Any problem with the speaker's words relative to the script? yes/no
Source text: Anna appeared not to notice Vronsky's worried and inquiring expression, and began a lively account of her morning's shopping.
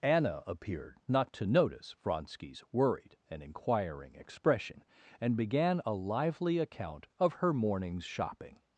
no